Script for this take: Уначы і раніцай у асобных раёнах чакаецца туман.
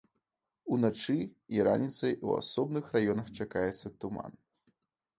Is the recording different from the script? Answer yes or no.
no